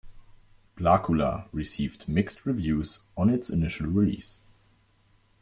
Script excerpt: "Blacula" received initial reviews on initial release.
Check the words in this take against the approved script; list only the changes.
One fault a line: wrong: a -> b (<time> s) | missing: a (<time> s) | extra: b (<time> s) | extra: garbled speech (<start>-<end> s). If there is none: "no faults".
wrong: initial -> mixed (2.1 s)
extra: its (3.3 s)